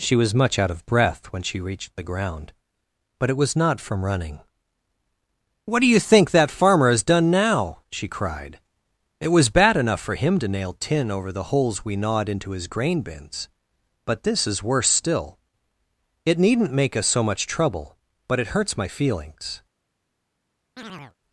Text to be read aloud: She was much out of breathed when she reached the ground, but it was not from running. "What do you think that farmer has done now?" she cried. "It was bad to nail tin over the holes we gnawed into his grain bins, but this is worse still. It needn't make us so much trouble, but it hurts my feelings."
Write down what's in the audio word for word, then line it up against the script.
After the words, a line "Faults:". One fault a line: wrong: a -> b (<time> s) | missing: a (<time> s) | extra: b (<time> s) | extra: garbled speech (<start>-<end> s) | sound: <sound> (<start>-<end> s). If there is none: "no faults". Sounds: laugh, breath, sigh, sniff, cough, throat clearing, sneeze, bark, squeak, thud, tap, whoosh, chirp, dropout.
She was much out of breath when she reached the ground, but it was not from running. "What do you think that farmer has done now?" she cried. "It was bad enough for him to nail tin over the holes we gnawed into his grain bins, but this is worse still. It needn't make us so much trouble, but it hurts my feelings."
Faults:
wrong: breathed -> breath (0.9 s)
extra: enough for him (9.8 s)
sound: chirp (20.8-21.2 s)